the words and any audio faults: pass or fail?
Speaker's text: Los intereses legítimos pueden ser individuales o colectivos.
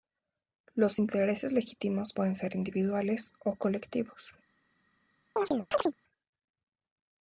fail